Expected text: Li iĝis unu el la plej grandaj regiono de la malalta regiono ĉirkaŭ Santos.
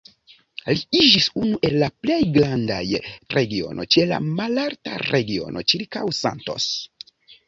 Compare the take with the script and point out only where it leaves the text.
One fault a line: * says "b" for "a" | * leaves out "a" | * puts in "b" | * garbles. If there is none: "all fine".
all fine